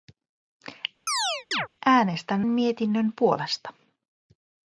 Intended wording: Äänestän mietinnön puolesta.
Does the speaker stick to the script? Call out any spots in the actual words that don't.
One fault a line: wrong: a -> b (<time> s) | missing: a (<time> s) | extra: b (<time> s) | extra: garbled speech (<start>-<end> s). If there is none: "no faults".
no faults